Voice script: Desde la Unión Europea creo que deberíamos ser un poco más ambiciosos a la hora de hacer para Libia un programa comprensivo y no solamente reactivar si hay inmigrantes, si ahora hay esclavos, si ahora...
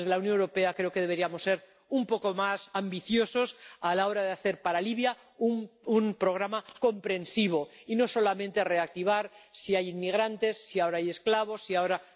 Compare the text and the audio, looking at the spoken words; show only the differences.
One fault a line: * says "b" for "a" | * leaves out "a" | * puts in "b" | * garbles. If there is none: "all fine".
all fine